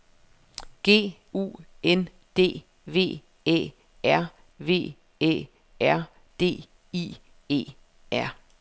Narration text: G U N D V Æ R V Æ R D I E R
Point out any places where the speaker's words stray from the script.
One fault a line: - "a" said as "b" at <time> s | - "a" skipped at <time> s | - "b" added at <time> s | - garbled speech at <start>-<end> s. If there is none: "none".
none